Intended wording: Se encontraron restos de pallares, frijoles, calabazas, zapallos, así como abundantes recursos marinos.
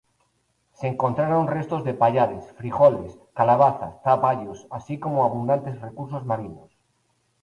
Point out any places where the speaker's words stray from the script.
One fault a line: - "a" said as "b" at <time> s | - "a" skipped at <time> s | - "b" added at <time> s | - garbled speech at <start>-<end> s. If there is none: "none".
none